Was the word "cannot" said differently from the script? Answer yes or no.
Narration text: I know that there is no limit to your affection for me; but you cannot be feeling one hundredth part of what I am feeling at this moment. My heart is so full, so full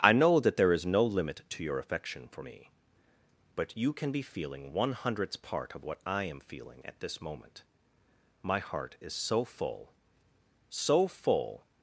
yes